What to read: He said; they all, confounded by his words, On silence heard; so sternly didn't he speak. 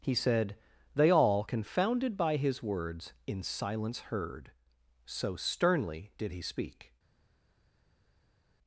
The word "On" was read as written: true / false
false